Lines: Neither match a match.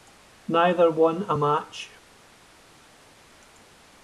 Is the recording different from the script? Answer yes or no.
yes